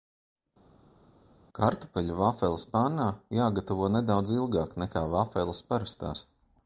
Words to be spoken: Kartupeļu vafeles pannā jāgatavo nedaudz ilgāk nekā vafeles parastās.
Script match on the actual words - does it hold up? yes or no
yes